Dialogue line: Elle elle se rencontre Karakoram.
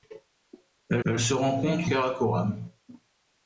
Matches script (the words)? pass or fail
pass